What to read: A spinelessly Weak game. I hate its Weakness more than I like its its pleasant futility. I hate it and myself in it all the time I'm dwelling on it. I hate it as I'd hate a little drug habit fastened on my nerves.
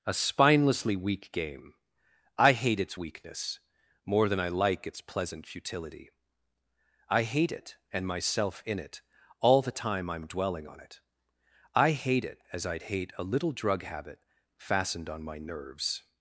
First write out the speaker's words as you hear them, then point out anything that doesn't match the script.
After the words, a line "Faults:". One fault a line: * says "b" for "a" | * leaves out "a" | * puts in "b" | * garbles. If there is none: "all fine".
A spinelessly Weak game. I hate its Weakness more than I like its pleasant futility. I hate it and myself in it all the time I'm dwelling on it. I hate it as I'd hate a little drug habit fastened on my nerves.
Faults:
* leaves out "its"